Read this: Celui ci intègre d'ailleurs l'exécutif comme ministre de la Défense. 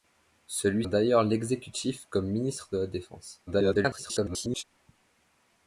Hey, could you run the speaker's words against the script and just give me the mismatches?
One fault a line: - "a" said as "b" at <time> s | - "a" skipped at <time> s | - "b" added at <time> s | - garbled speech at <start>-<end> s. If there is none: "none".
- "ci intègre" skipped at 0.9 s
- garbled speech at 3.5-4.6 s